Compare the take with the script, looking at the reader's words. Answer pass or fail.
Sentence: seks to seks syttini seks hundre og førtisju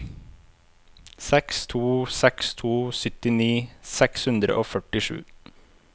fail